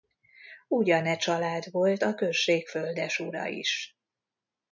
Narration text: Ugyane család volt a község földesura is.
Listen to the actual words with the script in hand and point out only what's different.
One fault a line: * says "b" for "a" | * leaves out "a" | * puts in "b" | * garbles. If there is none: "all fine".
all fine